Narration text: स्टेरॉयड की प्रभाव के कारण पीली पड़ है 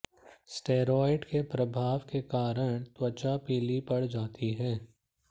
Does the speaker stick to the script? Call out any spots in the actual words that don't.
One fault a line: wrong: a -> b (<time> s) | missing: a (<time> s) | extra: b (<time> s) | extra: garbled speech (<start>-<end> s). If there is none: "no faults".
wrong: की -> के (1.2 s)
extra: त्वचा (2.8 s)
extra: जाती (4.0 s)